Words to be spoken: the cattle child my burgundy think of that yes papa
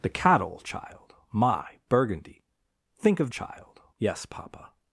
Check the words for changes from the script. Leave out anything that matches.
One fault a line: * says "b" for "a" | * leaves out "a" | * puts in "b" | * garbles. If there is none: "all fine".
* says "child" for "that"